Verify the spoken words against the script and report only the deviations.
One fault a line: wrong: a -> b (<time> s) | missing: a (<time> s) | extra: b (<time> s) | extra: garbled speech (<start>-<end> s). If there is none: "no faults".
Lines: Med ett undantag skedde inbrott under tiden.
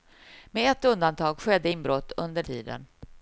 no faults